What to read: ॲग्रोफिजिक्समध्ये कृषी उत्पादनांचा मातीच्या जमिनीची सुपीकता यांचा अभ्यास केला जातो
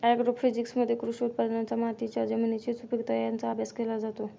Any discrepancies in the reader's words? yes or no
no